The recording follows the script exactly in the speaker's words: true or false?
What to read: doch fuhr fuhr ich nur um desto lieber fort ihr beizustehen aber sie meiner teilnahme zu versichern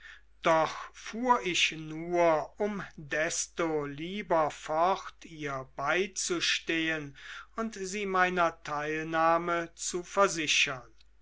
false